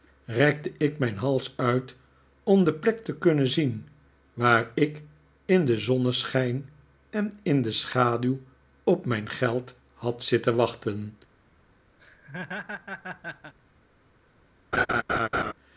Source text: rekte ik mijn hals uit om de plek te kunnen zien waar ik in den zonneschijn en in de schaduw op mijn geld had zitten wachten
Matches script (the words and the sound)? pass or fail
fail